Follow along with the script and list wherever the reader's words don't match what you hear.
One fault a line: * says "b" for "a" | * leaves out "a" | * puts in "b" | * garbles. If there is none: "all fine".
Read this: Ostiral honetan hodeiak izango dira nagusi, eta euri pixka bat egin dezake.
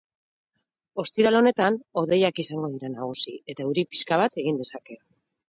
all fine